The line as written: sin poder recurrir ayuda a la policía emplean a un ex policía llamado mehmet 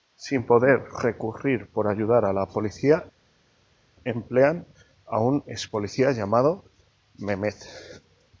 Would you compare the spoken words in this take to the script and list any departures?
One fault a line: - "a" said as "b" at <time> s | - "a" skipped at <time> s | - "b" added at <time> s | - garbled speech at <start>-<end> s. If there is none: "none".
- "por" added at 1.7 s